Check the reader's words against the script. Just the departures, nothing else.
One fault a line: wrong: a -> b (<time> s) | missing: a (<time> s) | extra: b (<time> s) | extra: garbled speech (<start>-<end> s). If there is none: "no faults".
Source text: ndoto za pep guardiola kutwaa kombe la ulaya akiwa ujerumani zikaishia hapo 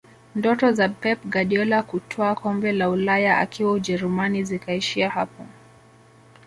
no faults